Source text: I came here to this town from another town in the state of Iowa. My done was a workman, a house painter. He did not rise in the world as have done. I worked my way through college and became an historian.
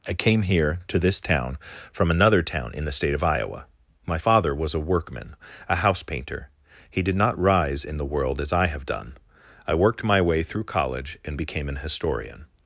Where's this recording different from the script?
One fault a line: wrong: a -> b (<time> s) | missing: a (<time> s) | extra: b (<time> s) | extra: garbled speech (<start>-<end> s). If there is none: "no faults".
wrong: done -> father (4.1 s)
extra: I (8.5 s)